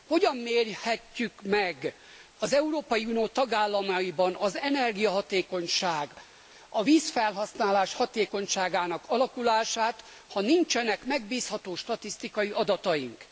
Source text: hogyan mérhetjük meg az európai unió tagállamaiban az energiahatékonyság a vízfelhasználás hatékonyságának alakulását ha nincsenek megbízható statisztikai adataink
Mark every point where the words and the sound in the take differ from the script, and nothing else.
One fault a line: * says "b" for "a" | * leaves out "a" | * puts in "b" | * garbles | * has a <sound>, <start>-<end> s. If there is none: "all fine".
all fine